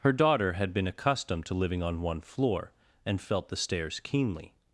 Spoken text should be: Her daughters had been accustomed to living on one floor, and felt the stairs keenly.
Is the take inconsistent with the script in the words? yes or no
yes